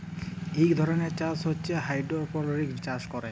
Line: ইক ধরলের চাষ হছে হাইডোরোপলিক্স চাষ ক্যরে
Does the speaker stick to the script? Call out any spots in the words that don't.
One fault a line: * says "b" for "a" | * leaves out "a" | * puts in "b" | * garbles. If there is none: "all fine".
all fine